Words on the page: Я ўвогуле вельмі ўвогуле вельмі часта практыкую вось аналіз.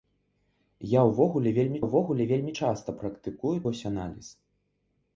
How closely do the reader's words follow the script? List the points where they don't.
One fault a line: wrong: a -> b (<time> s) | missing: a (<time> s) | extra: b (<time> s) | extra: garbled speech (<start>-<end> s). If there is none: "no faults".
no faults